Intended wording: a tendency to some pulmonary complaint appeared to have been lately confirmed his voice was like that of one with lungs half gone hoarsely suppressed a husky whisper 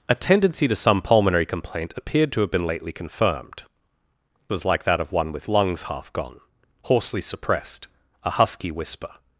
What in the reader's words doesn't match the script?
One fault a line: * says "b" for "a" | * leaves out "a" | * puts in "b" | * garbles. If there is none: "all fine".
* leaves out "his voice"